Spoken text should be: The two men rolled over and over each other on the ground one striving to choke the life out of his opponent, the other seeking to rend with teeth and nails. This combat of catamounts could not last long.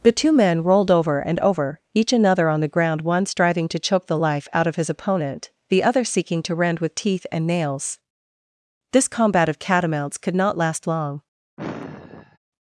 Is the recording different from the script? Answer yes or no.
yes